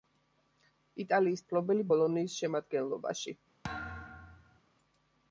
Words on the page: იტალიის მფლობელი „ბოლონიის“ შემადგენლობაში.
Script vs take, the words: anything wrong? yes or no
no